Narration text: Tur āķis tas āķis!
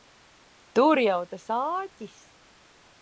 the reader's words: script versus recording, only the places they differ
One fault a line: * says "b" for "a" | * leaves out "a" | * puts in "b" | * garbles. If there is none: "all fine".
* says "jau" for "āķis"